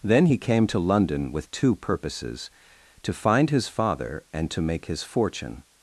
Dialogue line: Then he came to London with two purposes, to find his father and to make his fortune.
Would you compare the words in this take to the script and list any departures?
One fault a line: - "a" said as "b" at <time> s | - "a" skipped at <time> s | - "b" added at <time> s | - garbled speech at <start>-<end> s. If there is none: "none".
none